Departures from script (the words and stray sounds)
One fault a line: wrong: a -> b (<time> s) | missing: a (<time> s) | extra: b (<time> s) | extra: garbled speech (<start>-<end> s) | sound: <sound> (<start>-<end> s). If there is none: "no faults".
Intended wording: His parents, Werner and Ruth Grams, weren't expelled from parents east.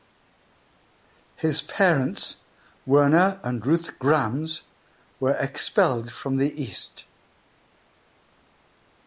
wrong: weren't -> were (5.2 s)
wrong: parents -> the (6.4 s)